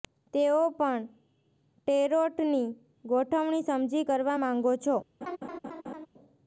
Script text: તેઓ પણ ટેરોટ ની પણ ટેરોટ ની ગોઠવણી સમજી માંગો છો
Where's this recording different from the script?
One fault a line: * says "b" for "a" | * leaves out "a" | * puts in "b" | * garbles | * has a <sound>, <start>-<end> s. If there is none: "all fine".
* leaves out "પણ ટેરોટ ની"
* puts in "કરવા"
* has a laugh, 5.2-6.1 s